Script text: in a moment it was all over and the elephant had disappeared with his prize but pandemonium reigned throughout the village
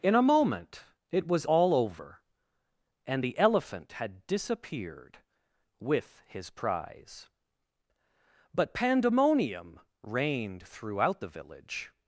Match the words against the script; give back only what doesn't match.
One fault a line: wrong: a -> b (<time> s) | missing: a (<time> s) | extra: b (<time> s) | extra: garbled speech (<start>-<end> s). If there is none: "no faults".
no faults